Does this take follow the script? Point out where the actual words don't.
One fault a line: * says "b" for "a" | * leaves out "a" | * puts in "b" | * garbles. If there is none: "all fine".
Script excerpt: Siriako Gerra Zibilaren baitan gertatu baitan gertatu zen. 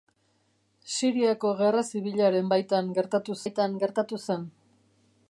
all fine